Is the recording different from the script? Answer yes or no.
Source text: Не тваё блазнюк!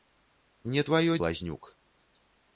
no